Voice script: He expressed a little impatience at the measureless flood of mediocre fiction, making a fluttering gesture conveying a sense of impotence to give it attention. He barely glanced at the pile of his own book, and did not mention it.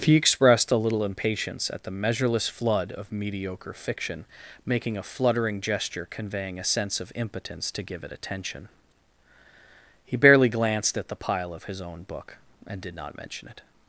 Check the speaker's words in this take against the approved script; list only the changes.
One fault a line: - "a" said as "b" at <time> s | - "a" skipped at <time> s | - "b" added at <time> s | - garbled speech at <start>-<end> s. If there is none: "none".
none